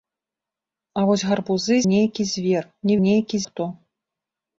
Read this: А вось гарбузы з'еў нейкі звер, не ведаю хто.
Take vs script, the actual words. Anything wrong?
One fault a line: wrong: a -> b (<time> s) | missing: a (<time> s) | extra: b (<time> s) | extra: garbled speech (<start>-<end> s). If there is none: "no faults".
missing: з'еў (1.8 s)
wrong: ведаю -> нейкі (3.0 s)